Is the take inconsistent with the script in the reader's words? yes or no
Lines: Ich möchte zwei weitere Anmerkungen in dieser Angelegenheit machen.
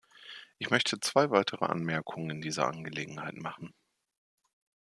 no